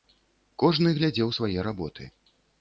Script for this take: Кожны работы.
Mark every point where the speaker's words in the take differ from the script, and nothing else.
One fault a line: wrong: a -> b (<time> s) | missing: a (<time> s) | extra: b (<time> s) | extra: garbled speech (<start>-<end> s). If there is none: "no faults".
extra: глядзеў свае (1.0 s)